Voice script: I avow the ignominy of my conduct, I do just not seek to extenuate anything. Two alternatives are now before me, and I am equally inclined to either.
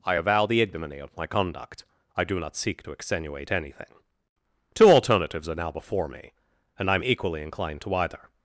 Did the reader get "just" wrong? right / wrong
wrong